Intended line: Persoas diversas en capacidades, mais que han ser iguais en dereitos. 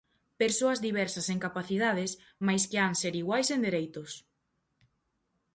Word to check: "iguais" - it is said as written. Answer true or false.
true